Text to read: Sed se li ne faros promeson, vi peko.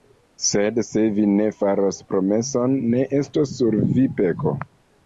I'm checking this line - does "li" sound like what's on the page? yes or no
no